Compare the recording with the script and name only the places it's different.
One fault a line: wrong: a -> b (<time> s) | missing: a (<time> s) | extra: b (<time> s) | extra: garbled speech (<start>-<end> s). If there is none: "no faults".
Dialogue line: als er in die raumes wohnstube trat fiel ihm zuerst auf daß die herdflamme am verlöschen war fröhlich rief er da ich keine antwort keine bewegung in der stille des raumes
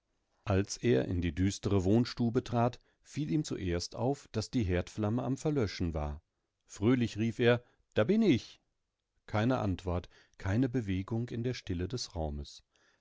wrong: raumes -> düstere (1.4 s)
extra: bin (8.0 s)